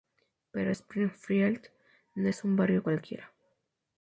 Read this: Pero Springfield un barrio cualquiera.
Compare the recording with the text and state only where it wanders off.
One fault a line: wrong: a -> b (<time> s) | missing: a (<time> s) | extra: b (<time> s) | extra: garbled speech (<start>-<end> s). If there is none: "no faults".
extra: no es (2.1 s)